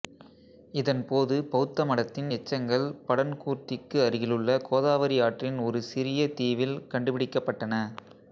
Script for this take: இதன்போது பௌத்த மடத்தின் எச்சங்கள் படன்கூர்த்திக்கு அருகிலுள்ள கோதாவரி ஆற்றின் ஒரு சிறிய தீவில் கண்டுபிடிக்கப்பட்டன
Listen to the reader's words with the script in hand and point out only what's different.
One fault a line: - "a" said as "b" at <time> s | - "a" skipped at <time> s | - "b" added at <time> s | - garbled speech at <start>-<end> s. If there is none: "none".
none